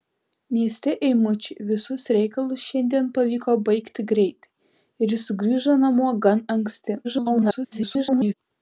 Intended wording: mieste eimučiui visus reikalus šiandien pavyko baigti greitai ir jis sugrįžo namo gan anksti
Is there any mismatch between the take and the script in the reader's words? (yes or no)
yes